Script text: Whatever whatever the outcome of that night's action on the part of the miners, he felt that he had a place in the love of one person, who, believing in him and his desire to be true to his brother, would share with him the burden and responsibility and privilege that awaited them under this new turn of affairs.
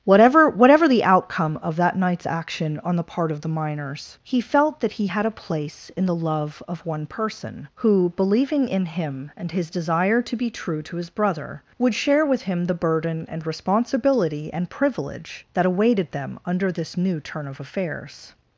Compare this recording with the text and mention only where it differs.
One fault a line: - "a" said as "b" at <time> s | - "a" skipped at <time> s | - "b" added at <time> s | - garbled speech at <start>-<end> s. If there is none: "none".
none